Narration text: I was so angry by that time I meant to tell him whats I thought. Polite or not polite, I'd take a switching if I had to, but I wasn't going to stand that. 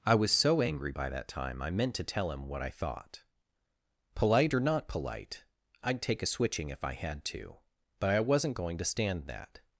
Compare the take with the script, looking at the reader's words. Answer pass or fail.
fail